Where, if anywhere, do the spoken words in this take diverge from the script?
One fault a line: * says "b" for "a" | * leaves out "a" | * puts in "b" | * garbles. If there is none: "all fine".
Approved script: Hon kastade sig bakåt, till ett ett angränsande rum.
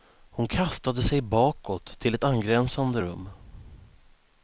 * leaves out "ett"